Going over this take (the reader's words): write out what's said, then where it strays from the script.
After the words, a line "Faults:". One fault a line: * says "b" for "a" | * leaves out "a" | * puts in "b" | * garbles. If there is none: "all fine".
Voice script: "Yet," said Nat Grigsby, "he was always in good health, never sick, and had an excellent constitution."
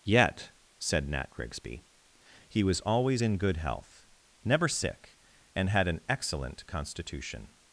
"Yet," said Nat Grigsby, "he was always in good health, never sick, and had an excellent constitution."
Faults:
all fine